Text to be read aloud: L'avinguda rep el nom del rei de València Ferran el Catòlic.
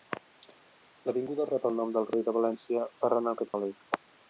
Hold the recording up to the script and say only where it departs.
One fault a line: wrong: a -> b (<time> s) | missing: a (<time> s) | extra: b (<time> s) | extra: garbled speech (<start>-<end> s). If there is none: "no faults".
no faults